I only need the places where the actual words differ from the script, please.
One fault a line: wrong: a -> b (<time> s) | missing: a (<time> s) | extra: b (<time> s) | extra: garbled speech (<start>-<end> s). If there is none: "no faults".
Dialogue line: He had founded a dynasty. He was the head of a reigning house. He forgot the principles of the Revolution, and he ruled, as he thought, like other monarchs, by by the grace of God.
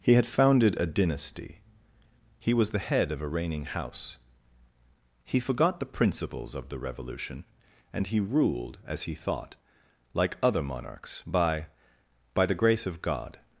no faults